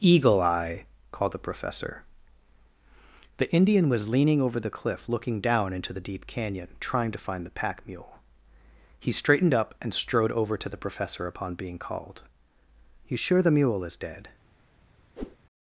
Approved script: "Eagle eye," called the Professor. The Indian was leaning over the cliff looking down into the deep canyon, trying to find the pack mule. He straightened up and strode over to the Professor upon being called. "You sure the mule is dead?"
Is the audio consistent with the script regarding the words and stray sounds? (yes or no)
no